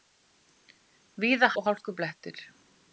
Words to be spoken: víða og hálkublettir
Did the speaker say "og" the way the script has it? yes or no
yes